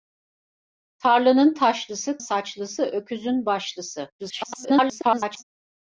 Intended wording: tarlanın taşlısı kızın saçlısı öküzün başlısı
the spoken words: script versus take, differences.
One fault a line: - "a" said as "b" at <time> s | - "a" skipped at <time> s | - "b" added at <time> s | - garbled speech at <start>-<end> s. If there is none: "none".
- "kızın" skipped at 2.2 s
- garbled speech at 4.2-5.4 s